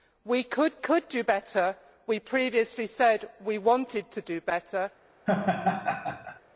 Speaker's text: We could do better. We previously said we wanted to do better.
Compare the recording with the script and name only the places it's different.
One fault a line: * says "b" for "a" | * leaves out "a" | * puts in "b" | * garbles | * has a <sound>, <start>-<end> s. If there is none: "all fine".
* puts in "could"
* has a laugh, 5.3-6.4 s